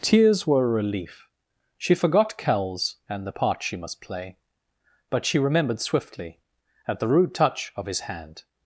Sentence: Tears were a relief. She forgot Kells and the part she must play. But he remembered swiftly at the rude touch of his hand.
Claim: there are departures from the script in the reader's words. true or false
true